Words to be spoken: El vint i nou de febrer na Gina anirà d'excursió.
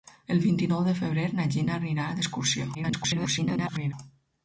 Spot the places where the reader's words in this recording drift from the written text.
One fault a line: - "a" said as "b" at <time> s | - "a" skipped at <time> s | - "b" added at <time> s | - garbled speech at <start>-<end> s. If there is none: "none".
- garbled speech at 2.7-3.9 s